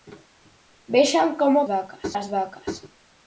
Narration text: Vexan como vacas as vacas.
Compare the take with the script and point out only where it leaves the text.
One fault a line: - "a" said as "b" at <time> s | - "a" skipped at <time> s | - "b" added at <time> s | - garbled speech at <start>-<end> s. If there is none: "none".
none